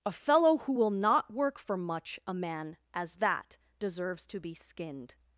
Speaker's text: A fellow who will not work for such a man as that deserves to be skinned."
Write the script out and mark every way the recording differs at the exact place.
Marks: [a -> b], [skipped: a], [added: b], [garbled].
A fellow who will not work for [such -> much] a man as that deserves to be skinned."